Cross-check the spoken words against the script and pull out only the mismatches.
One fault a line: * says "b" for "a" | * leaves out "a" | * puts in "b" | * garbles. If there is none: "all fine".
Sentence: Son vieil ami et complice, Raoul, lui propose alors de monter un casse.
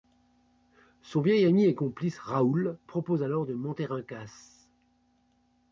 * leaves out "lui"